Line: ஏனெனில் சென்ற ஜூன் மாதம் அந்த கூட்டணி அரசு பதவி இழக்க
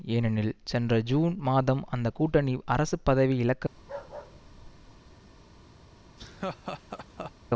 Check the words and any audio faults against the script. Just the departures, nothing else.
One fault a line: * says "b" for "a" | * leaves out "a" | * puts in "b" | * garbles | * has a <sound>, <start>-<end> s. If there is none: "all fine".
* has a bark, 3.7-5.2 s
* has a laugh, 6.2-7.3 s